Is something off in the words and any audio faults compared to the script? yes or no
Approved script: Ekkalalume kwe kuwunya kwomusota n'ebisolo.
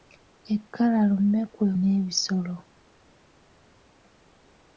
yes